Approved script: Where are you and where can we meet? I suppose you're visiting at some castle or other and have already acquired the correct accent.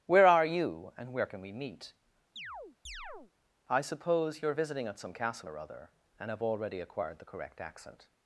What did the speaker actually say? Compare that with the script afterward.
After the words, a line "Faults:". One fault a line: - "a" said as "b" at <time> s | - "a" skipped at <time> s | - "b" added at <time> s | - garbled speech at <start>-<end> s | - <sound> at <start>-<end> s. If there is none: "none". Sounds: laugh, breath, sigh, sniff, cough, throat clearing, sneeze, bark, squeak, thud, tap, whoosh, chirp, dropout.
Where are you and where can we meet? I suppose you're visiting at some castle or other and have already acquired the correct accent.
Faults:
- chirp at 2.4-3.3 s